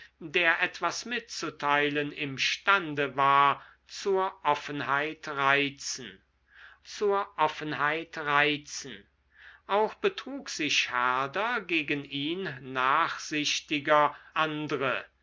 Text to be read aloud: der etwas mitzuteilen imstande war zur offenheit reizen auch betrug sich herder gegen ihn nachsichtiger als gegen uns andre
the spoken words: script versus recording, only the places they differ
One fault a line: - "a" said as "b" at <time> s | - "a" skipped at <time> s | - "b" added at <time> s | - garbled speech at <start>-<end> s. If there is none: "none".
- "zur offenheit reizen" added at 6.8 s
- "als gegen uns" skipped at 14.2 s